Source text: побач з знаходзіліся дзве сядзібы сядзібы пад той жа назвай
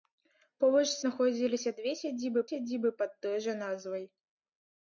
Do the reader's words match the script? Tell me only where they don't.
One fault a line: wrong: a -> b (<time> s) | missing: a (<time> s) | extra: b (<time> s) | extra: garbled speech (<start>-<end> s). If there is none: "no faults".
no faults